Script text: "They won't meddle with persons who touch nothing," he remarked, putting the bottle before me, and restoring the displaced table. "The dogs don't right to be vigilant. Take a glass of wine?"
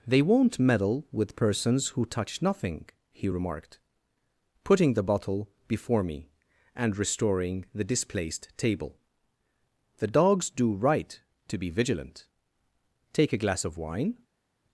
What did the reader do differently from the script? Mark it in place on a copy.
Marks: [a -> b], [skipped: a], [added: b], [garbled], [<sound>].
"They won't meddle with persons who touch nothing," he remarked, putting the bottle before me, and restoring the displaced table. "The dogs [don't -> do] right to be vigilant. Take a glass of wine?"